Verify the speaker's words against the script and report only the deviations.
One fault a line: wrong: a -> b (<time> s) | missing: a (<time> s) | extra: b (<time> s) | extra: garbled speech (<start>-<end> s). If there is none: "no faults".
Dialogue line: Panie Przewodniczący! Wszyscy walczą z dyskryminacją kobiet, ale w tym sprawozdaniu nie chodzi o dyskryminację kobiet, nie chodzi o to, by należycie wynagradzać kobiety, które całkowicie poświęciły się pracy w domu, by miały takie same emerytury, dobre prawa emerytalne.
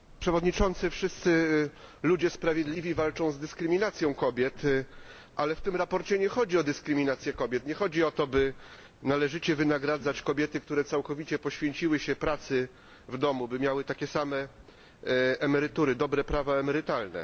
extra: ludzie sprawiedliwi (2.0 s)